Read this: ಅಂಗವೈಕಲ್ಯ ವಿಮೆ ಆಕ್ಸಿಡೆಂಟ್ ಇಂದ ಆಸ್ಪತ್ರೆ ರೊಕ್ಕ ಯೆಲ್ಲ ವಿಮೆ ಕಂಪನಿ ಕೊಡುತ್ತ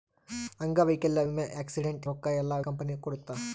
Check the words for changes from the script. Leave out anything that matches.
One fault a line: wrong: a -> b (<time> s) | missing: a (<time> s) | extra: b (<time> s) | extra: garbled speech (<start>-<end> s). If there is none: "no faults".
missing: ಇಂದ ಆಸ್ಪತ್ರೆ (2.1 s)
missing: ವಿಮೆ (2.6 s)